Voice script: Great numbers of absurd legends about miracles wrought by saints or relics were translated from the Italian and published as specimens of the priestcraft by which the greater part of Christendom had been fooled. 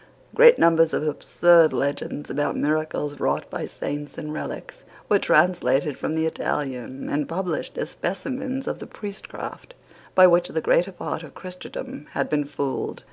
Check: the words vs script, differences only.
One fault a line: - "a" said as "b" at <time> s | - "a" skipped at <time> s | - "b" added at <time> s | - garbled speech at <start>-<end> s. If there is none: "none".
- "or" said as "and" at 4.2 s